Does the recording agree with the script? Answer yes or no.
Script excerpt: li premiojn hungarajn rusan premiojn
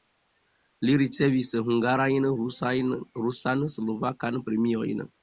no